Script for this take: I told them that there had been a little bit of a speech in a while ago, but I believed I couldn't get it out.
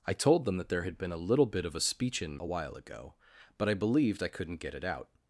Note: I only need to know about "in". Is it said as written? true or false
true